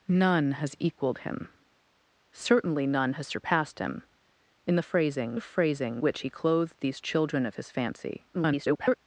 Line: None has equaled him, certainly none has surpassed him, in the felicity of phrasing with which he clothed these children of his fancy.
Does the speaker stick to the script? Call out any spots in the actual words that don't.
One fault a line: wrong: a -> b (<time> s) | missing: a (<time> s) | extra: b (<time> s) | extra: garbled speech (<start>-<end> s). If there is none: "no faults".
wrong: felicity -> phrasing (4.8 s)
missing: with (6.0 s)
extra: garbled speech (8.3-9.0 s)